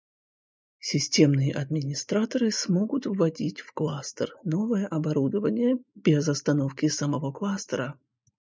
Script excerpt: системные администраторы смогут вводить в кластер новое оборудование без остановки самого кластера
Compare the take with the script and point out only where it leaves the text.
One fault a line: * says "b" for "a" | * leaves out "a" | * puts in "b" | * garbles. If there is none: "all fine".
all fine